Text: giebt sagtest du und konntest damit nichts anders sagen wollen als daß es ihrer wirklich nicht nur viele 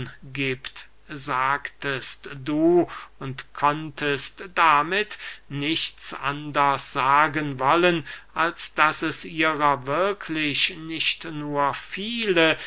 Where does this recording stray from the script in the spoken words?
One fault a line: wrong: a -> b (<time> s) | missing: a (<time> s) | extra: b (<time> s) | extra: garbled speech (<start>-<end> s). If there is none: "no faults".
no faults